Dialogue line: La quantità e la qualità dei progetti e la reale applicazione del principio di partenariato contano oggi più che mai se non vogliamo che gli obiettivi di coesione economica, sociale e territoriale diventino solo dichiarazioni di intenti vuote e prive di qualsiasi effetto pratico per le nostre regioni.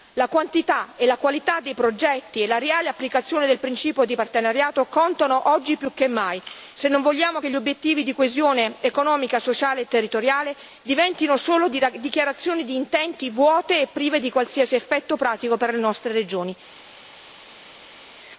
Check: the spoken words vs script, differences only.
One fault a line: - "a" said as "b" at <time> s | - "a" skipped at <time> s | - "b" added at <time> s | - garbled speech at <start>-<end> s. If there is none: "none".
none